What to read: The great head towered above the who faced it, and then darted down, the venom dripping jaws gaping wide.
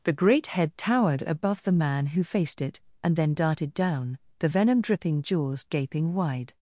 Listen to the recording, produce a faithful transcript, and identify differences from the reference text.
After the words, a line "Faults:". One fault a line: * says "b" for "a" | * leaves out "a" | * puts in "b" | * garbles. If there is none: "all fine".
The great head towered above the man who faced it, and then darted down, the venom dripping jaws gaping wide.
Faults:
* puts in "man"